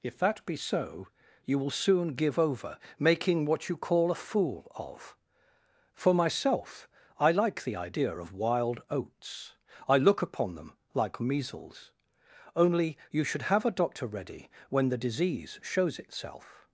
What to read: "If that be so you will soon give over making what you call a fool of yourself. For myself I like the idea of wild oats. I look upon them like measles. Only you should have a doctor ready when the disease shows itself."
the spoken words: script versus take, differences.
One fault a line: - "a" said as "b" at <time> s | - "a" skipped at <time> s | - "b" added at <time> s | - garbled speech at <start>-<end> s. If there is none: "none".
- "yourself" skipped at 5.2 s